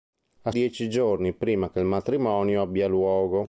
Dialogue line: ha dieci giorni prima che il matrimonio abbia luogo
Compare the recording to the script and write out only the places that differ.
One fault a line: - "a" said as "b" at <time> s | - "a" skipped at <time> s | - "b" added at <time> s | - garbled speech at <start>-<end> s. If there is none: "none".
none